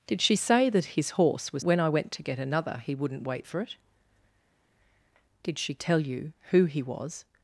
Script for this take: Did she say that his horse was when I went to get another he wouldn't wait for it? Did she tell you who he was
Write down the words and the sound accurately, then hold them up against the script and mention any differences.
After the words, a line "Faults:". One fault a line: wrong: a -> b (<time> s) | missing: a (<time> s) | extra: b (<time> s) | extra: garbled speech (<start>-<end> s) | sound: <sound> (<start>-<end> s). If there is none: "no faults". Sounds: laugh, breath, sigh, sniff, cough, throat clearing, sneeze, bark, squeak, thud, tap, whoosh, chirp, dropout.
Did she say that his horse was when I went to get another he wouldn't wait for it? Did she tell you who he was
Faults:
no faults